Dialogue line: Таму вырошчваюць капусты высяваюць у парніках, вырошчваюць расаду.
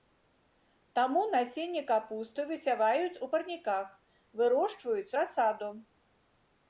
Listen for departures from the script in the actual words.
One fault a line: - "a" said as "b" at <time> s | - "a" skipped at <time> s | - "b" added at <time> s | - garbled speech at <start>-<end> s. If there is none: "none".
- "вырошчваюць" said as "насенне" at 1.3 s